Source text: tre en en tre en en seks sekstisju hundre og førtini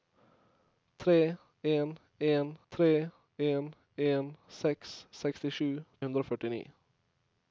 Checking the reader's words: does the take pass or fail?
pass